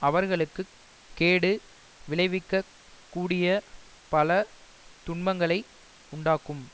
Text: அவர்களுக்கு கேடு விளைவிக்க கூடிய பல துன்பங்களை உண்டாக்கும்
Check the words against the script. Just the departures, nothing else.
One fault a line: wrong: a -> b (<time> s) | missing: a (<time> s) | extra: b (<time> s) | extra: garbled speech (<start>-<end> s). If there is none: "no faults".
no faults